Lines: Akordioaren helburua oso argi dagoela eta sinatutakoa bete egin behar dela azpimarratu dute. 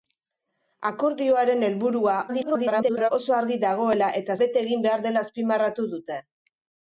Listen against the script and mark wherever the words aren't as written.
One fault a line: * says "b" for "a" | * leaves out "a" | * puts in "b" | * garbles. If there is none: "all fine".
* garbles
* leaves out "sinatutakoa"